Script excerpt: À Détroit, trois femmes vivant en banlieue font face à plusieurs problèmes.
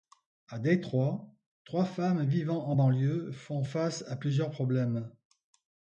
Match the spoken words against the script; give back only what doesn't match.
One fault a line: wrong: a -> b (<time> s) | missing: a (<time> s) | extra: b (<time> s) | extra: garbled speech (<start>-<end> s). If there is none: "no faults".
no faults